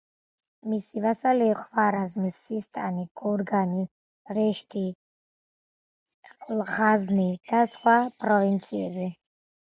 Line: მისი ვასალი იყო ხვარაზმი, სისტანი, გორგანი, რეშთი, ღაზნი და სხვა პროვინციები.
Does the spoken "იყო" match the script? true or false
false